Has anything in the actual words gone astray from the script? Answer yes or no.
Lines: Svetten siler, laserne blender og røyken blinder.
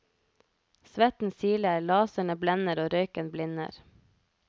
no